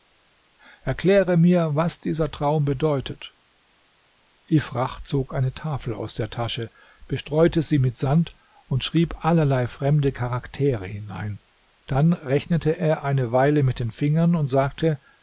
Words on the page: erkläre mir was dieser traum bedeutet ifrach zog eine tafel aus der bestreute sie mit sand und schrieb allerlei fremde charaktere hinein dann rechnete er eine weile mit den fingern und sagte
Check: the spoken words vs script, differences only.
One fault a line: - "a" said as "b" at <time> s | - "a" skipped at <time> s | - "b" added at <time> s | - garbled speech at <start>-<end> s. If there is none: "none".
- "tasche" added at 6.3 s